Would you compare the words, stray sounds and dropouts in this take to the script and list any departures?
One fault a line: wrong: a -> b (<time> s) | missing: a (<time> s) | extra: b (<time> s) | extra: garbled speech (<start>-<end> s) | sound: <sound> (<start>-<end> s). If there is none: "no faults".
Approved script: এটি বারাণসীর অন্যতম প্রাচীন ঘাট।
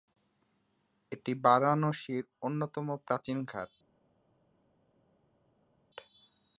no faults